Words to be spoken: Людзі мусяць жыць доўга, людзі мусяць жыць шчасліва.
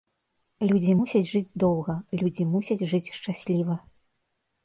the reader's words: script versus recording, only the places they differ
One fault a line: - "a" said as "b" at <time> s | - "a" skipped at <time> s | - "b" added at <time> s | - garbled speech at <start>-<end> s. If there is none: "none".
none